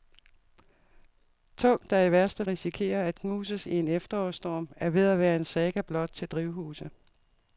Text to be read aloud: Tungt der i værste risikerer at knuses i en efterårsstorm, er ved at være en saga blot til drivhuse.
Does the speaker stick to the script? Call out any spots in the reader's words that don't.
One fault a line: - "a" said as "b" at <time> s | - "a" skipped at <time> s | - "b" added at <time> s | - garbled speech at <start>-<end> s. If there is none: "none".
none